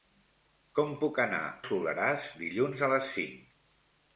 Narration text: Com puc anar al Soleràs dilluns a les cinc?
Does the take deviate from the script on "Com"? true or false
false